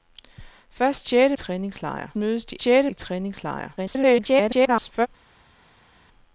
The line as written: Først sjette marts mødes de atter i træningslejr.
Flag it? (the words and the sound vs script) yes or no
yes